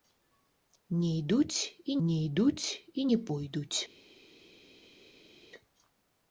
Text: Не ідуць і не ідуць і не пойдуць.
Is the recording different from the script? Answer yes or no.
no